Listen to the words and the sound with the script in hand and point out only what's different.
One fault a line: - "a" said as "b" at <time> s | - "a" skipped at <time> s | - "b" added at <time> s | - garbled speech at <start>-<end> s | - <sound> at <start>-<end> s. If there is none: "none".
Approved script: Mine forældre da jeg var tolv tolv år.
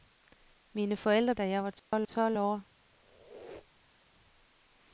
- dropout at 1.8-1.9 s
- squeak at 2.9-4.1 s